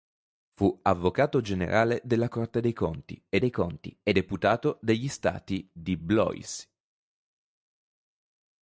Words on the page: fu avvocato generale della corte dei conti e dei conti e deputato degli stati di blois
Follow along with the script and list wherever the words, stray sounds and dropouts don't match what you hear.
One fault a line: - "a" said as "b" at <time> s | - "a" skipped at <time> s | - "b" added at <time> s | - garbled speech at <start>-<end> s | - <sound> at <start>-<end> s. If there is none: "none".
none